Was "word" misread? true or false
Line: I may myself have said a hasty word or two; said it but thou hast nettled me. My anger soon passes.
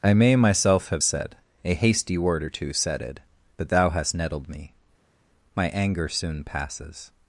false